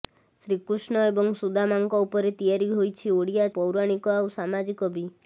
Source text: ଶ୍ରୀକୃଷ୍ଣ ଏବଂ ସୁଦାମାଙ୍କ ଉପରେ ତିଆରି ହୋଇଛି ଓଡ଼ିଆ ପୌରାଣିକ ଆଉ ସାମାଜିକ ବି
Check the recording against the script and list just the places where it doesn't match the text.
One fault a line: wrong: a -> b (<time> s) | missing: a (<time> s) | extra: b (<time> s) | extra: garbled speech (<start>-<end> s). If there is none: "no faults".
no faults